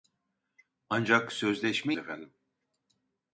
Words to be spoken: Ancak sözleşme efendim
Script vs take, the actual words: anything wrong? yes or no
no